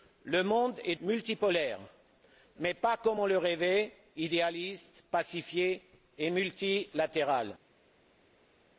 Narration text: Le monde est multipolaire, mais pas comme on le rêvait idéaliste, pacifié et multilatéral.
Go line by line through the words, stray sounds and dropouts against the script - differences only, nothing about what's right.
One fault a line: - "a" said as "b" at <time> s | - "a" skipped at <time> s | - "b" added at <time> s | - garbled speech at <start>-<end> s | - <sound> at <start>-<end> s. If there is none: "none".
none